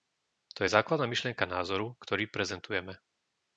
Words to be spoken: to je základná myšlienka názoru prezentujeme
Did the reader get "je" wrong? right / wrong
right